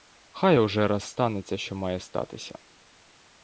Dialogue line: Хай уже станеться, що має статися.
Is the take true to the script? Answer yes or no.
no